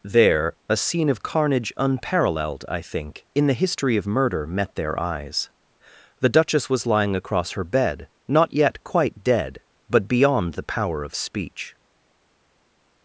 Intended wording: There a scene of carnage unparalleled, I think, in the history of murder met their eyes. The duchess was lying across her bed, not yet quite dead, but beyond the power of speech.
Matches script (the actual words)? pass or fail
pass